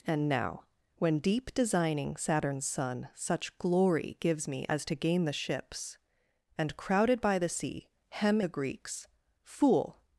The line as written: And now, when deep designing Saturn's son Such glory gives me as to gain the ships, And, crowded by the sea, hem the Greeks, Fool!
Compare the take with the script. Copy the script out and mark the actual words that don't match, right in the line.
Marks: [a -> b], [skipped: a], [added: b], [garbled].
And now, when deep designing Saturn's son Such glory gives me as to gain the ships, And, crowded by the sea, hem the Greeks, Fool!